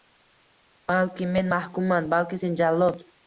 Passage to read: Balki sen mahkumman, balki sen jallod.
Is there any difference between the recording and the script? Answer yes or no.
yes